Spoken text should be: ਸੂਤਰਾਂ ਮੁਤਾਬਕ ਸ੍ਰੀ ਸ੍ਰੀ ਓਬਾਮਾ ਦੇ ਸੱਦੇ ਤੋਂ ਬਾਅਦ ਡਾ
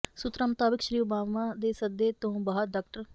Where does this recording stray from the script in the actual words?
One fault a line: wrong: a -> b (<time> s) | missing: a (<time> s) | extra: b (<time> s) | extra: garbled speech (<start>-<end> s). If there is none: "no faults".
missing: ਸ੍ਰੀ (1.0 s)